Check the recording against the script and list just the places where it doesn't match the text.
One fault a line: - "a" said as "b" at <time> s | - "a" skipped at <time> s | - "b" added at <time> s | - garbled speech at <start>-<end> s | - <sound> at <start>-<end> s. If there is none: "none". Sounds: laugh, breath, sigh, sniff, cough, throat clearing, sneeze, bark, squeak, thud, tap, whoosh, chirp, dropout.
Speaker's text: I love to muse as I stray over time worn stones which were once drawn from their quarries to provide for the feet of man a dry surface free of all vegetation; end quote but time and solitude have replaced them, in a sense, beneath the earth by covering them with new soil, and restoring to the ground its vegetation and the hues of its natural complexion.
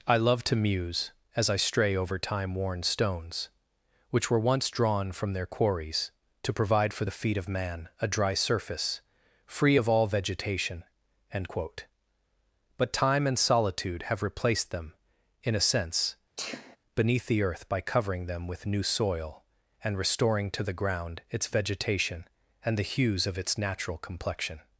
- sneeze at 16.4-16.8 s